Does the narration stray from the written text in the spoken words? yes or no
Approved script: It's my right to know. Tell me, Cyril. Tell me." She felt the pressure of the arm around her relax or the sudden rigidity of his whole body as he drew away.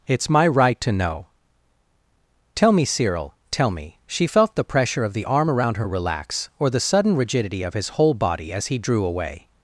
no